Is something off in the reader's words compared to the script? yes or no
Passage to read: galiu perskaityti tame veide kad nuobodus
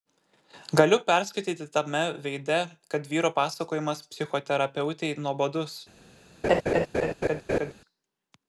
yes